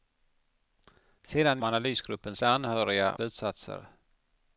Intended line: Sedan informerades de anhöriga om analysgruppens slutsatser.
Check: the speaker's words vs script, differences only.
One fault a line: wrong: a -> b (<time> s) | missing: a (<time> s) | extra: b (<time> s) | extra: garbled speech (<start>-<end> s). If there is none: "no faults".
wrong: informerades -> analysgruppens (1.6 s)
missing: om analysgruppens (3.2 s)